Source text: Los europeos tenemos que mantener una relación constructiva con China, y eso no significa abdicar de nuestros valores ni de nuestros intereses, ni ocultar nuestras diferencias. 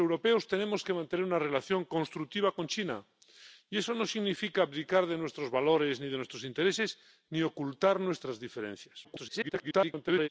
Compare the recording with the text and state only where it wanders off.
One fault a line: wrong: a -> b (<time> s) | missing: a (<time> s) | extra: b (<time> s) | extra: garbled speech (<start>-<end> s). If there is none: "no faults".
extra: garbled speech (9.0-10.3 s)